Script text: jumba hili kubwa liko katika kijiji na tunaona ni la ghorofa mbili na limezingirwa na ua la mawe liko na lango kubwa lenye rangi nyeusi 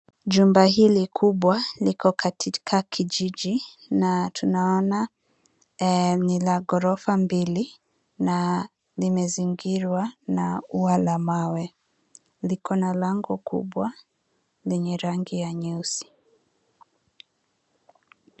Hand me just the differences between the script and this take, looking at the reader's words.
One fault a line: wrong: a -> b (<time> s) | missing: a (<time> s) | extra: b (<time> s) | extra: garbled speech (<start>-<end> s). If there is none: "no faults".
extra: ya (15.4 s)